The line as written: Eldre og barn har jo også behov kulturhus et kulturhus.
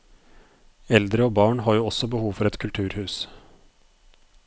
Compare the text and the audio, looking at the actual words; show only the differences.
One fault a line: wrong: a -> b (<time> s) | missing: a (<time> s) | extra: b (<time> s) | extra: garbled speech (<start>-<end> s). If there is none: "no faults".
wrong: kulturhus -> for (2.3 s)